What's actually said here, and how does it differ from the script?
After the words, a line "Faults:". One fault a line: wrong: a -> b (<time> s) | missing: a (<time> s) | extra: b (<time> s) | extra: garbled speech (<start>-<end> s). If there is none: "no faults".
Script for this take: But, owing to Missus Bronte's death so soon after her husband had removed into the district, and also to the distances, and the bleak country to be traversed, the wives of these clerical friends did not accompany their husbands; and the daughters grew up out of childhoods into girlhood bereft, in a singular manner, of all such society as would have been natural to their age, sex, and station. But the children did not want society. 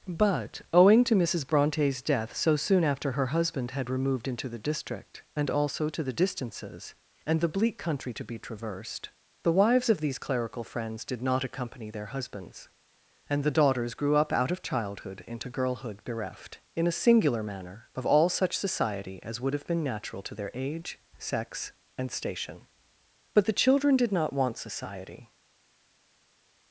But, owing to Missus Bronte's death so soon after her husband had removed into the district, and also to the distances, and the bleak country to be traversed, the wives of these clerical friends did not accompany their husbands; and the daughters grew up out of childhood into girlhood bereft, in a singular manner, of all such society as would have been natural to their age, sex, and station. But the children did not want society.
Faults:
wrong: childhoods -> childhood (14.6 s)